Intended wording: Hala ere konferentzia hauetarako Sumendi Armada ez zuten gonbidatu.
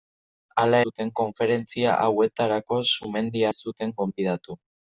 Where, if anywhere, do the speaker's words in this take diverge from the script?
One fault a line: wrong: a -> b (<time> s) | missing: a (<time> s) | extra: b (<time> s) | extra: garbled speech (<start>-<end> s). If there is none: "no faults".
wrong: ere -> zuten (0.9 s)
missing: Armada (3.4 s)